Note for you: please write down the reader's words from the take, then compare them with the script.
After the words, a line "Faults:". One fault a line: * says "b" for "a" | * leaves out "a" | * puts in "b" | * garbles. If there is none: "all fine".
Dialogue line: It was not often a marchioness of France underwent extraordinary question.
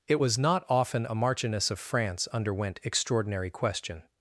It was not often a marchioness of France underwent extraordinary question.
Faults:
all fine